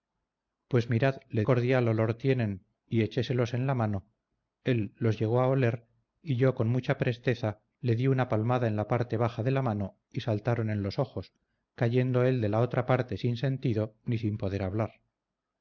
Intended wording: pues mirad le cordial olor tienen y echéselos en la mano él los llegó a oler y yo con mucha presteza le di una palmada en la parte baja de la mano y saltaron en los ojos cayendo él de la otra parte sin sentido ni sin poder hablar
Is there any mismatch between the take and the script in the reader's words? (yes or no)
no